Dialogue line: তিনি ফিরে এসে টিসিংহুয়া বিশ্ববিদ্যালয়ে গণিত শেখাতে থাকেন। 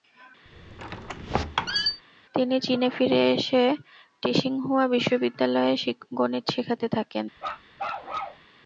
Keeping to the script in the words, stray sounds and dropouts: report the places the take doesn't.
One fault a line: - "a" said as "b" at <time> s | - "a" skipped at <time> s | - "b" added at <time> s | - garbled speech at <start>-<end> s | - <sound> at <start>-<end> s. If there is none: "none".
- squeak at 0.5-2.0 s
- "চীনে" added at 2.6 s
- bark at 7.4-8.5 s